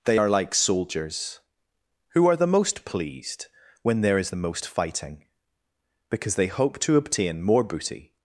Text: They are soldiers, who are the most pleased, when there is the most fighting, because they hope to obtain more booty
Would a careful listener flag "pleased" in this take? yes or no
no